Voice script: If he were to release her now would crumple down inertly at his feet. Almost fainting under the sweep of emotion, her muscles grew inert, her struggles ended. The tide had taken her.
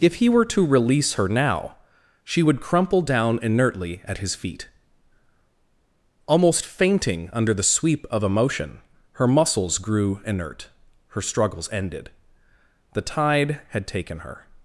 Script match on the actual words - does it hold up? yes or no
no